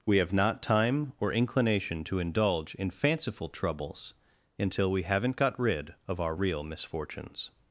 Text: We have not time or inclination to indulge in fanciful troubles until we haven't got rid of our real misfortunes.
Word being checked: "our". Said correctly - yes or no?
yes